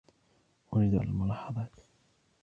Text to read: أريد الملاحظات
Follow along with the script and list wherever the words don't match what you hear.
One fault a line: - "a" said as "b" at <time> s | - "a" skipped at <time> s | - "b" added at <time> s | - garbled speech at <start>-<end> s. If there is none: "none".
none